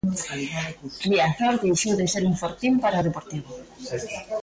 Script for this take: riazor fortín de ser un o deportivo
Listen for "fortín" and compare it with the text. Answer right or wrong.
wrong